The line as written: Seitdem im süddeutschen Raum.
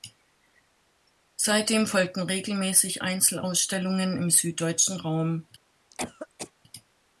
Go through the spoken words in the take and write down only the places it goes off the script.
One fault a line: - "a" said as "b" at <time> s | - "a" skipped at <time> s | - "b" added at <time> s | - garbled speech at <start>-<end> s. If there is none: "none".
- "folgten regelmäßig Einzelausstellungen" added at 1.9 s